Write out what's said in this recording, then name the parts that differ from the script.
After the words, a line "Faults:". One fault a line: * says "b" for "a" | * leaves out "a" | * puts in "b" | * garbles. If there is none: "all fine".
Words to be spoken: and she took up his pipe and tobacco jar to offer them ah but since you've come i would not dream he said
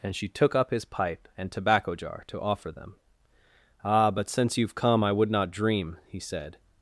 and she took up his pipe and tobacco jar to offer them ah but since you've come i would not dream he said
Faults:
all fine